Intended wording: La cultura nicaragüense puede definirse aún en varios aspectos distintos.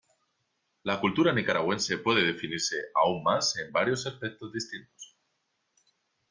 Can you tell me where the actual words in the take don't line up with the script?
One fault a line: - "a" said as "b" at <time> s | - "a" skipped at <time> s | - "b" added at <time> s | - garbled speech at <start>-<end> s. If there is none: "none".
- "más" added at 3.2 s